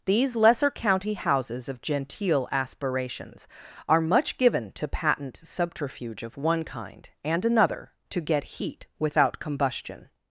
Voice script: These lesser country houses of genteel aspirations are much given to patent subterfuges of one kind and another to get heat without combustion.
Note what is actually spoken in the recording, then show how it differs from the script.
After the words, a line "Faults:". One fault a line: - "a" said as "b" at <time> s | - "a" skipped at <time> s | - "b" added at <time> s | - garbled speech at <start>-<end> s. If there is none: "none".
These lesser county houses of genteel aspirations are much given to patent subterfuge of one kind and another to get heat without combustion.
Faults:
- "country" said as "county" at 0.7 s
- "subterfuges" said as "subterfuge" at 5.4 s